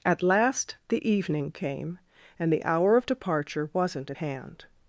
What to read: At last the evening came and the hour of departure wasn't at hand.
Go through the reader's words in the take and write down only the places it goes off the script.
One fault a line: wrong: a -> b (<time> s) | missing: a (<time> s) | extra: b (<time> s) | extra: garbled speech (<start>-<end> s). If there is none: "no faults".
no faults